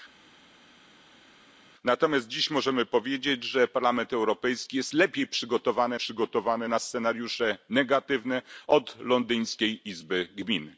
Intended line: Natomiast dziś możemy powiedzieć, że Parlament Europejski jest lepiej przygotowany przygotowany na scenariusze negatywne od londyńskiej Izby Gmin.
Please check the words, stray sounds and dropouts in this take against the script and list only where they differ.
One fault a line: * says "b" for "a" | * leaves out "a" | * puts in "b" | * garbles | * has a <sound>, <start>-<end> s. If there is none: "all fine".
all fine